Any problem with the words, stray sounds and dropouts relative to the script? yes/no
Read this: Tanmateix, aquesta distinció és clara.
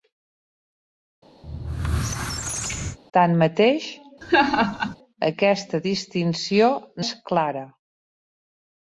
yes